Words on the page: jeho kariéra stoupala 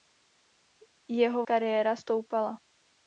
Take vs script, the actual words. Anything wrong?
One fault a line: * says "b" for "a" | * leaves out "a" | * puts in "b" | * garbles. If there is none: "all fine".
all fine